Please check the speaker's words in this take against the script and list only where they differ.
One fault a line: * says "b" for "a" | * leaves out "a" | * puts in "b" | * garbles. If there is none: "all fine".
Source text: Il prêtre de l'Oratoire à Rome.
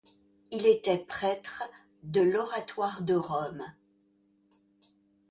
* puts in "était"
* says "de" for "à"